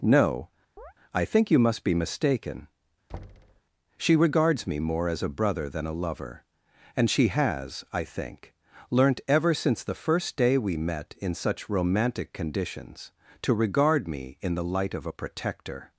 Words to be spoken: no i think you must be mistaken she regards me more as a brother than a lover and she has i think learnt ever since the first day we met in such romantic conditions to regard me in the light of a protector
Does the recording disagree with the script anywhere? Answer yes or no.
no